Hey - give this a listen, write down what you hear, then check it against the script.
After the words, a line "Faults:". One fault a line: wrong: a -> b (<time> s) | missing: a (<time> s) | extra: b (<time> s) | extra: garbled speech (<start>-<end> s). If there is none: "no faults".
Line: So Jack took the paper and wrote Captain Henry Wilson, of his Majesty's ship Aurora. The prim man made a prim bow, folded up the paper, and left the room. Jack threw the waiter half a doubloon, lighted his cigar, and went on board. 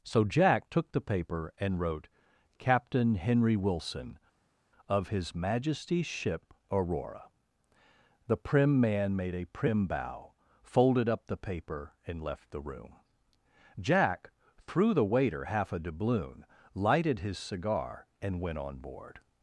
So Jack took the paper and wrote Captain Henry Wilson, of his Majesty's ship Aurora. The prim man made a prim bow, folded up the paper, and left the room. Jack threw the waiter half a doubloon, lighted his cigar, and went on board.
Faults:
no faults